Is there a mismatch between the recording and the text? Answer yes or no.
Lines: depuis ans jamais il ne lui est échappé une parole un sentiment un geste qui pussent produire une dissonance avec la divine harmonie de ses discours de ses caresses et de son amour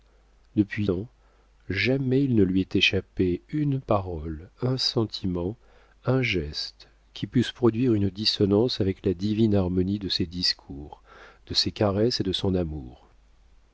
no